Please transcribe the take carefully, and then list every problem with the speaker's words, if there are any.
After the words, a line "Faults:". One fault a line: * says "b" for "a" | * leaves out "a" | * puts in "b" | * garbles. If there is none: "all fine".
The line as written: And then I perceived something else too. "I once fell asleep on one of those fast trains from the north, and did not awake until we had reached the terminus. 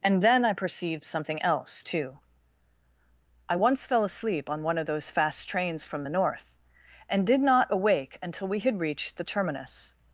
And then I perceived something else too. "I once fell asleep on one of those fast trains from the north, and did not awake until we had reached the terminus.
Faults:
all fine